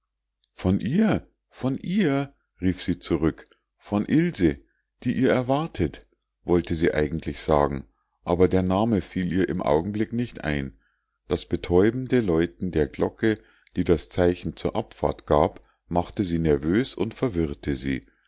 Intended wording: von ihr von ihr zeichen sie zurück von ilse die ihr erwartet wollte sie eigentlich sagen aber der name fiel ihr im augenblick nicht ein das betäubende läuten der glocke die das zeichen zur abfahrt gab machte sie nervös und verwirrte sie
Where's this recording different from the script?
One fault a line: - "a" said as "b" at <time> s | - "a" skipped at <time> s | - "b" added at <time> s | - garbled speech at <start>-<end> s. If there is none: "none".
- "zeichen" said as "rief" at 2.6 s